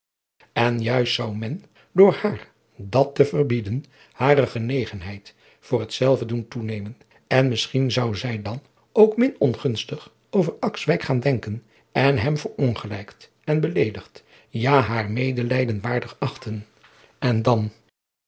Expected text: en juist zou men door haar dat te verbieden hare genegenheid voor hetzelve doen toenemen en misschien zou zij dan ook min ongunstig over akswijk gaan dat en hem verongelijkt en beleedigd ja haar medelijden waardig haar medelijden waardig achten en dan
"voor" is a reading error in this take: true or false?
false